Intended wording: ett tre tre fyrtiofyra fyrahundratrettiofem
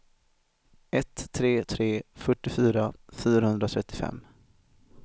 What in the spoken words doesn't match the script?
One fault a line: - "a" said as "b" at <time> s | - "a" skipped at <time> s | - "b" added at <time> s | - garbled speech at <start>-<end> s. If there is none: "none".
none